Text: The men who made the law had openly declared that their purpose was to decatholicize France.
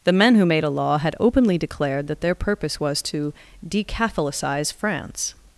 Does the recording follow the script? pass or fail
fail